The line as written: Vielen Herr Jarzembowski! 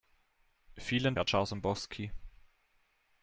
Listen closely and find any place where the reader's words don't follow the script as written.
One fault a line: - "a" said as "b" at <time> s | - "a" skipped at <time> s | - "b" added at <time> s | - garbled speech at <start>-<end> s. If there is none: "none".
none